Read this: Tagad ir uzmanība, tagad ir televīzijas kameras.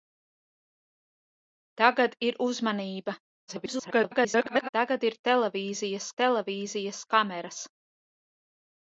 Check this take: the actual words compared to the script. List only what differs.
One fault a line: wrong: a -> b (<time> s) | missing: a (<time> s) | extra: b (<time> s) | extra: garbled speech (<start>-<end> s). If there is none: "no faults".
extra: garbled speech (3.5-4.7 s)
extra: televīzijas (6.2 s)